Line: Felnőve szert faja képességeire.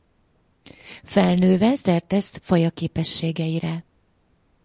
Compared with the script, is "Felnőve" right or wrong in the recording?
right